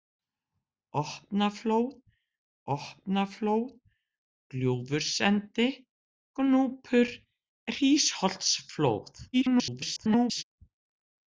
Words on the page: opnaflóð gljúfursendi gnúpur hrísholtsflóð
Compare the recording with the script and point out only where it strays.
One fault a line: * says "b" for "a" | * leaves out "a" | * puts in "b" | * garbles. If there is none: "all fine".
* puts in "opnaflóð"
* garbles